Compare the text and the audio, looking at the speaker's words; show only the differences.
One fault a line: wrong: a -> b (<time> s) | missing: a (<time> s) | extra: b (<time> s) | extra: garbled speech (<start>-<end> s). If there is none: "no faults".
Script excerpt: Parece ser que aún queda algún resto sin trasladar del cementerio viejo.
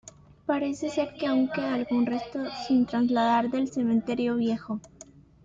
no faults